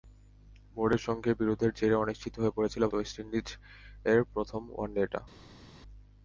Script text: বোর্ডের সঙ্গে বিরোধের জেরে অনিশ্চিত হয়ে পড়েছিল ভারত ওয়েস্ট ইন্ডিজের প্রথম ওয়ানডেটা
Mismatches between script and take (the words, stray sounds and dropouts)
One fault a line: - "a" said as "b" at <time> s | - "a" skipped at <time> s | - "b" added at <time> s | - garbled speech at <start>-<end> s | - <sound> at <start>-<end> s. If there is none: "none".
- "ভারত" skipped at 2.8 s